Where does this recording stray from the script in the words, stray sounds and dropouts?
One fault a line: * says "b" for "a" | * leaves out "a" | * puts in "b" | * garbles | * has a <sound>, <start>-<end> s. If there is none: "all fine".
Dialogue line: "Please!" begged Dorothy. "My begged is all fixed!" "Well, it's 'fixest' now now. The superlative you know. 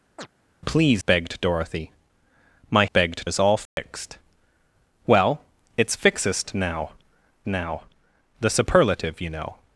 * has a chirp, 0.2-0.3 s
* has a dropout, 3.7-3.8 s